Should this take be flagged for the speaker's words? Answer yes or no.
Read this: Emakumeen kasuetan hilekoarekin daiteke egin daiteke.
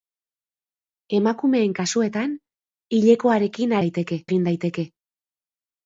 no